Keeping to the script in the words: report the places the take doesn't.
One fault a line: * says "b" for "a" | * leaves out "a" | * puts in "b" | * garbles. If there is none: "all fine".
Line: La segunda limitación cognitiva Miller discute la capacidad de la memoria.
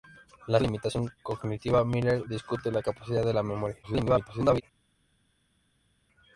* leaves out "segunda"
* garbles